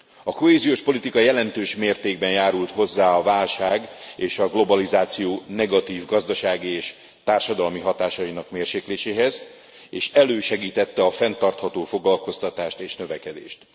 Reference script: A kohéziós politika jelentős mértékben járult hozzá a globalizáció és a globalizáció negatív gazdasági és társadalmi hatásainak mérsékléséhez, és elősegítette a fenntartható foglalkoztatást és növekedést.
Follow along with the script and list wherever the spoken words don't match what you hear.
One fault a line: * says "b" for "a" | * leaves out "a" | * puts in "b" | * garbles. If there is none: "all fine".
* says "válság" for "globalizáció"